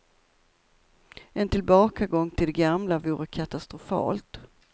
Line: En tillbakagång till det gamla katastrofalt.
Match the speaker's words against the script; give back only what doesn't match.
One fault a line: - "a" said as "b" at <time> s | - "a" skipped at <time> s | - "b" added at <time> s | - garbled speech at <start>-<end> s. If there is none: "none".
- "vore" added at 3.0 s